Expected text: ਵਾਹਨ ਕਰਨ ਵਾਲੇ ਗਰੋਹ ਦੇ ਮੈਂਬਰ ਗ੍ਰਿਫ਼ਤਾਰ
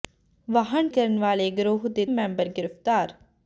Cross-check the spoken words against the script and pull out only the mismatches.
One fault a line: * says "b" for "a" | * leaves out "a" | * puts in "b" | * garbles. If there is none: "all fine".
all fine